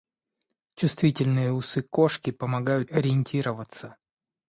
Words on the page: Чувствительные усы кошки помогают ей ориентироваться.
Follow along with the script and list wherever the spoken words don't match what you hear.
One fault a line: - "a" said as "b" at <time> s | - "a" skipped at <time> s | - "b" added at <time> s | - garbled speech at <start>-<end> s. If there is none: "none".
- "ей" skipped at 2.9 s